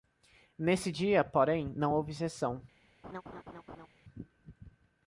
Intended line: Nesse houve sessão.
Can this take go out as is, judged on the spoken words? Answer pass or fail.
fail